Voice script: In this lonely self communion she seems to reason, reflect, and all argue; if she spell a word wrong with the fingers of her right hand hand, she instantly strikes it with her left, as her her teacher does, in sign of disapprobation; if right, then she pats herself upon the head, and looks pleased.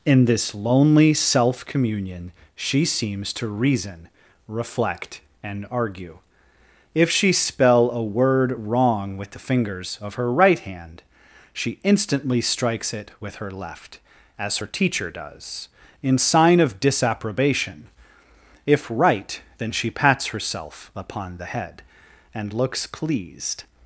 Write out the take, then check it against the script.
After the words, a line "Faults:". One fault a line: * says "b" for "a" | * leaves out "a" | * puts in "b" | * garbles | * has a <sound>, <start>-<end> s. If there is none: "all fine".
In this lonely self communion she seems to reason, reflect, and argue; if she spell a word wrong with the fingers of her right hand, she instantly strikes it with her left, as her teacher does, in sign of disapprobation; if right, then she pats herself upon the head, and looks pleased.
Faults:
* leaves out "all"
* leaves out "hand"
* leaves out "her"